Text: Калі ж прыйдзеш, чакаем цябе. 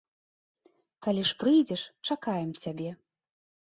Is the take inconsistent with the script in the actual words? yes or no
no